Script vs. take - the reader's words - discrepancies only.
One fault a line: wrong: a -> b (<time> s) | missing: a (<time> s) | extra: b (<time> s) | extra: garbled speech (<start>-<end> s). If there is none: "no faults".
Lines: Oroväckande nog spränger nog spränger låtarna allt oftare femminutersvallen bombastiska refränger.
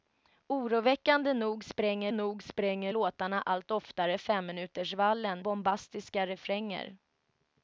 no faults